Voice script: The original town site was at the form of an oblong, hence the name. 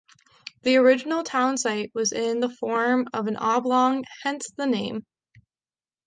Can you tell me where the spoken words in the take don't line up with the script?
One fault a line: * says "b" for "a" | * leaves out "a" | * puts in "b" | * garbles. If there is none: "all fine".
* says "in" for "at"